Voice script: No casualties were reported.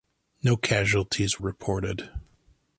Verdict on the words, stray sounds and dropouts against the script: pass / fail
fail